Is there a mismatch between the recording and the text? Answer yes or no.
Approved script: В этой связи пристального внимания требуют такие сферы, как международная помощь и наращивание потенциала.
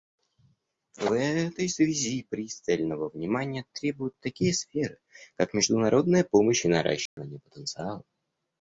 no